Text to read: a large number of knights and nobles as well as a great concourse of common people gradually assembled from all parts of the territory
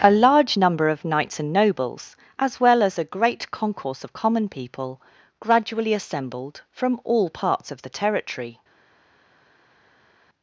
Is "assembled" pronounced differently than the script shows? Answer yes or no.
no